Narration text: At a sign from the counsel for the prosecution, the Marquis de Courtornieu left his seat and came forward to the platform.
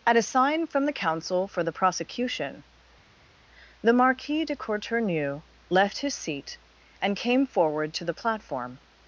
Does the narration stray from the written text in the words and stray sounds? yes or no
no